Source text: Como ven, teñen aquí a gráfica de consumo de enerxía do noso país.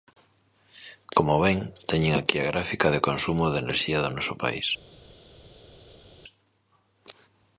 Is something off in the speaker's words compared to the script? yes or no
no